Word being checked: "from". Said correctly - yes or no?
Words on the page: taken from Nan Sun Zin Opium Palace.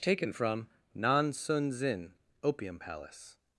yes